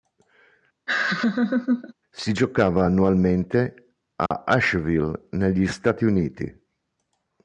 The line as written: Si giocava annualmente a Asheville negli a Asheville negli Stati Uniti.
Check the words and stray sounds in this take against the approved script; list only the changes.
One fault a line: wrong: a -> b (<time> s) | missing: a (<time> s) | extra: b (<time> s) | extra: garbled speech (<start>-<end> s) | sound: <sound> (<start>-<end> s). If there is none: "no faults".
sound: laugh (0.9-1.9 s)
sound: dropout (4.3-4.3 s)
missing: a Asheville negli (5.6 s)